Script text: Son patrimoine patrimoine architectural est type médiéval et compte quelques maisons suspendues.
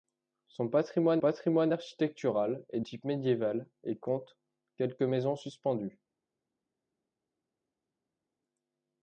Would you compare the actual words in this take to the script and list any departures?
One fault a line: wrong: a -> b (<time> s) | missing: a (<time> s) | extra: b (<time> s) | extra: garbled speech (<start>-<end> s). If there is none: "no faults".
no faults